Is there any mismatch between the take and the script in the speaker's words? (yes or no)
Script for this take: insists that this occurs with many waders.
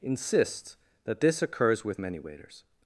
no